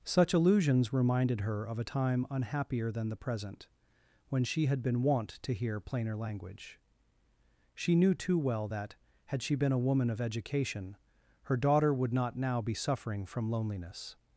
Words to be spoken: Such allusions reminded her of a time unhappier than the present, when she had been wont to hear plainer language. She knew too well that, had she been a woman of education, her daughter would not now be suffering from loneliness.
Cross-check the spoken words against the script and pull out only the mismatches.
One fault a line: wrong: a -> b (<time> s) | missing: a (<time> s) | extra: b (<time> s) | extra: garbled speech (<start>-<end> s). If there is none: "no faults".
no faults